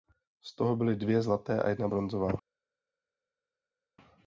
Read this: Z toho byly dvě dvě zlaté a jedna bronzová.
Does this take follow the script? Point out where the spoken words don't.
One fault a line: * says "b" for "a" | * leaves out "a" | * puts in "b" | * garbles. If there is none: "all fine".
* leaves out "dvě"